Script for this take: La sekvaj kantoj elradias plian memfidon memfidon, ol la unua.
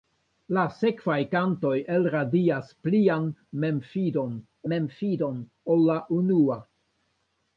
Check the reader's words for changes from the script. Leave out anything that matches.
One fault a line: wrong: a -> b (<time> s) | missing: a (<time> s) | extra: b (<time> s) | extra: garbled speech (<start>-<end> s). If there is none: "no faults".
no faults